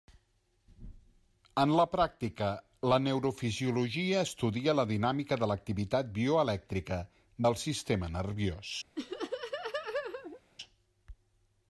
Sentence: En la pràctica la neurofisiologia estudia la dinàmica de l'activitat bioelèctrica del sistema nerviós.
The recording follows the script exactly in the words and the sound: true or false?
false